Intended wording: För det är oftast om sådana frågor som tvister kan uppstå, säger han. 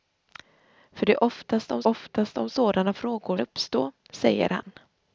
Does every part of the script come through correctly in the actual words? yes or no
no